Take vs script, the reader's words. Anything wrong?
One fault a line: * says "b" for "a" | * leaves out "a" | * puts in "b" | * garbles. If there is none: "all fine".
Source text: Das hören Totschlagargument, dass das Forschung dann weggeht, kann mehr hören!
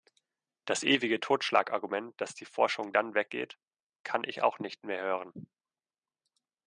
* says "ewige" for "hören"
* says "die" for "das"
* puts in "ich auch nicht"